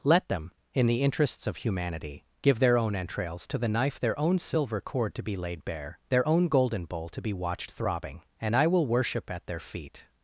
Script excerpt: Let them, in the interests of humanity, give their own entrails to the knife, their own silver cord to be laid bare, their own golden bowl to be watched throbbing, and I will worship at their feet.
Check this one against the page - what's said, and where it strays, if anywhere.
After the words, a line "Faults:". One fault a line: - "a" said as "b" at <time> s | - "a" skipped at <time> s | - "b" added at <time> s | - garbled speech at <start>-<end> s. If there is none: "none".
Let them, in the interests of humanity, give their own entrails to the knife, their own silver cord to be laid bare, their own golden bowl to be watched throbbing, and I will worship at their feet.
Faults:
none